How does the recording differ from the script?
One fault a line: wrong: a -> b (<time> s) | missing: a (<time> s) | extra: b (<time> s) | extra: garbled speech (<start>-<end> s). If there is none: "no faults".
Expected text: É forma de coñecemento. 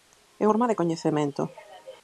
no faults